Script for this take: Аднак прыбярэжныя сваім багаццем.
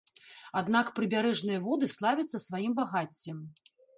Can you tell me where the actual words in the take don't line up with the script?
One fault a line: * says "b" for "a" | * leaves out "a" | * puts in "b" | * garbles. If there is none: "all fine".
* puts in "воды славяцца"